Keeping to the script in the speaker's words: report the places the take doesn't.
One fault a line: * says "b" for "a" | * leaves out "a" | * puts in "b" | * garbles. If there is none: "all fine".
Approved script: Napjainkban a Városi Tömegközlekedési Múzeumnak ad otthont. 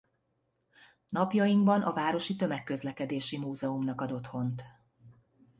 all fine